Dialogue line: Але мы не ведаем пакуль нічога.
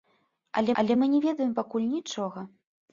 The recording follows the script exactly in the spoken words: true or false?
false